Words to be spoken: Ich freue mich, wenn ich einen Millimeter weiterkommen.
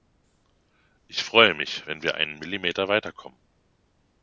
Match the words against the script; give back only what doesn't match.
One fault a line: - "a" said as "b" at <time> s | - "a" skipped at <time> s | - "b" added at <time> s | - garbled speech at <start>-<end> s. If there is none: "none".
- "ich" said as "wir" at 2.0 s